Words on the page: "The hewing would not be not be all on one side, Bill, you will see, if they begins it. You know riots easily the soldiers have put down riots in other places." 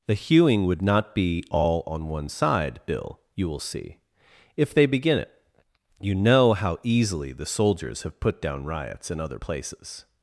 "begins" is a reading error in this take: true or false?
true